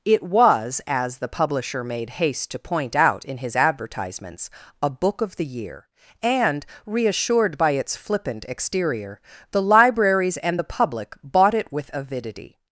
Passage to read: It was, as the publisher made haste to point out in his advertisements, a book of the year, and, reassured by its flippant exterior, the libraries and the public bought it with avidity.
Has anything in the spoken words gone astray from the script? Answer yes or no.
no